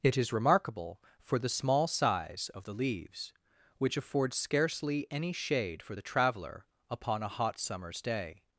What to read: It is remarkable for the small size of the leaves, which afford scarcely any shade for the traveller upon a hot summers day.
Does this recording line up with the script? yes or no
yes